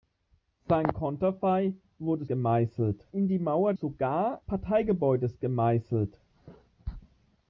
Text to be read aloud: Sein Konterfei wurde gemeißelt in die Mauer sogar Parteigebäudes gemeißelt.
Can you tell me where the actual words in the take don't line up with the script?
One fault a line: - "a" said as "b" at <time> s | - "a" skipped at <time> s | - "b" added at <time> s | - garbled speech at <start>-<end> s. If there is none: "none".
none